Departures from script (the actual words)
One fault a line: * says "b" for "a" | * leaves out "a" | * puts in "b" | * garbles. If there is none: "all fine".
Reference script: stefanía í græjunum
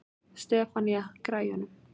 all fine